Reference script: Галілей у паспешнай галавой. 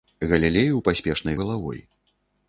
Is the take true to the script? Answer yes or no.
yes